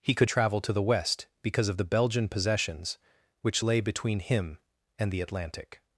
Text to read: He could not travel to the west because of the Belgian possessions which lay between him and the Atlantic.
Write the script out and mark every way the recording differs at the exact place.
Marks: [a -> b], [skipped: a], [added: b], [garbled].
He could [skipped: not] travel to the west because of the Belgian possessions which lay between him and the Atlantic.